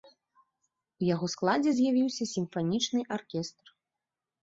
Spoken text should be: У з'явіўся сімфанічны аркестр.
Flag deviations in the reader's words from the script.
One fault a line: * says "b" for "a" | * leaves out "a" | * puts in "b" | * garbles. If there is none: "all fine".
* puts in "яго складзе"